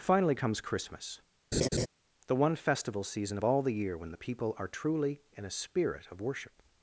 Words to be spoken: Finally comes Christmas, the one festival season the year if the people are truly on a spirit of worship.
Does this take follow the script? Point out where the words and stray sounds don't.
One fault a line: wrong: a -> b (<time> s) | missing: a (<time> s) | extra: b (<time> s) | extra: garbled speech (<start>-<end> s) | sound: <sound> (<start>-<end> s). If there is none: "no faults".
sound: laugh (1.5-1.9 s)
extra: of all (3.3 s)
wrong: if -> when (4.0 s)
wrong: on -> in (5.3 s)